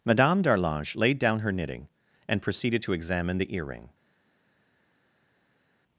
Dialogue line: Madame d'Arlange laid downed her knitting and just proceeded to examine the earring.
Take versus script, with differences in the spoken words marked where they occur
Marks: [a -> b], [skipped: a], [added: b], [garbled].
Madame d'Arlange laid [downed -> down] her knitting and [skipped: just] proceeded to examine the earring.